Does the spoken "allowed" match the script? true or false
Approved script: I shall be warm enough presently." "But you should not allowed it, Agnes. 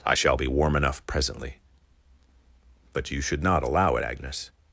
false